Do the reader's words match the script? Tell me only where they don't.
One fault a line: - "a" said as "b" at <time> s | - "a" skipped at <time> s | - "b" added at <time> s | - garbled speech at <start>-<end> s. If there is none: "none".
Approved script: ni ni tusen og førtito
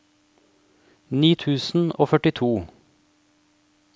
- "ni" skipped at 1.3 s